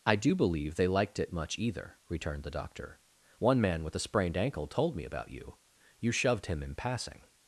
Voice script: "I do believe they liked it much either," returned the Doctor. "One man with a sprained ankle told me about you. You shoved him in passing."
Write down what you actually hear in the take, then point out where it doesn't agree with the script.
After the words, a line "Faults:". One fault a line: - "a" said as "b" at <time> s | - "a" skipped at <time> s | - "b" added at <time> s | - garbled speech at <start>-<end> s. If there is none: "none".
"I do believe they liked it much either," returned the Doctor. "One man with a sprained ankle told me about you. You shoved him in passing."
Faults:
none